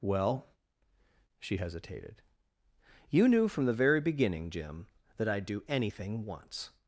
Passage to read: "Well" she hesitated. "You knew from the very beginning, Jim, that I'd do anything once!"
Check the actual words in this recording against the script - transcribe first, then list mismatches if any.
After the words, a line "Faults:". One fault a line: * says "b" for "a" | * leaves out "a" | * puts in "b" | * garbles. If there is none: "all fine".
"Well" she hesitated. "You knew from the very beginning, Jim, that I'd do anything once!"
Faults:
all fine